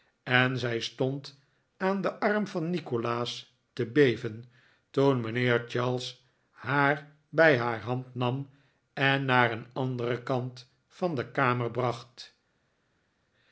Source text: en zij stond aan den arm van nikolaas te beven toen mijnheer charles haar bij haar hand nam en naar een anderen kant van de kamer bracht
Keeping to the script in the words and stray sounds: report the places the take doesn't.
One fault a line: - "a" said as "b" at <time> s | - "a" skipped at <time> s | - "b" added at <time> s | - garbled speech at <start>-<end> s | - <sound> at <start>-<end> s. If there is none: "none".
none